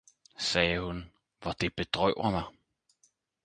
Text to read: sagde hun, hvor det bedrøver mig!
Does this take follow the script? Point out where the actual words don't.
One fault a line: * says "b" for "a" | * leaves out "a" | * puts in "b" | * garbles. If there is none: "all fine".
all fine